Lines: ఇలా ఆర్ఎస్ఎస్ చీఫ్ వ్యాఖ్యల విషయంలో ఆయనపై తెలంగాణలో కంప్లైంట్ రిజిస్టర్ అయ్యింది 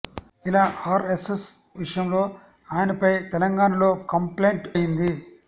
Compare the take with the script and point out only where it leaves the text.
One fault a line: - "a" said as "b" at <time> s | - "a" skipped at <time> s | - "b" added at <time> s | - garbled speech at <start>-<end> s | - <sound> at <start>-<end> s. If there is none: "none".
- "చీఫ్ వ్యాఖ్యల" skipped at 1.4 s
- "రిజిస్టర్" skipped at 4.7 s